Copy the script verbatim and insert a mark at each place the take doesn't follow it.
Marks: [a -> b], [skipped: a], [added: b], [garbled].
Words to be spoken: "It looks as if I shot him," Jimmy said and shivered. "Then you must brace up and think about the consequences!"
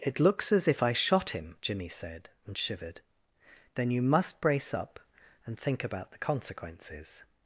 "It looks as if I shot him," Jimmy said and shivered. "Then you must brace up and think about the consequences!"